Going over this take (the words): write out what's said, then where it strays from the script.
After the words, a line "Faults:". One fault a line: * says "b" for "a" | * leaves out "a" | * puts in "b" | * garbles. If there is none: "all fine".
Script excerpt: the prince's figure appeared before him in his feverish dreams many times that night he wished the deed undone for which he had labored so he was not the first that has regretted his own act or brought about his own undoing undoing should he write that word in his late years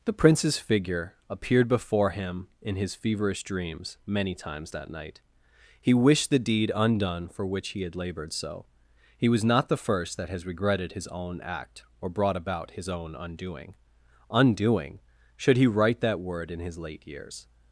the prince's figure appeared before him in his feverish dreams many times that night he wished the deed undone for which he had labored so he was not the first that has regretted his own act or brought about his own undoing undoing should he write that word in his late years
Faults:
all fine